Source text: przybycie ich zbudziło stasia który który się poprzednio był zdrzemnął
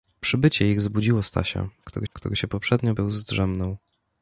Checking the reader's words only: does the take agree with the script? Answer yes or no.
yes